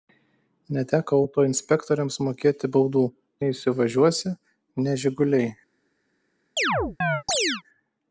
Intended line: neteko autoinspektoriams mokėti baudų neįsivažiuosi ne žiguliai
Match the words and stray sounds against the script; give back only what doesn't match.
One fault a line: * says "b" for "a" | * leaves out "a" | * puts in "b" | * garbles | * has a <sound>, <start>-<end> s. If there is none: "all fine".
* has a chirp, 6.6-7.6 s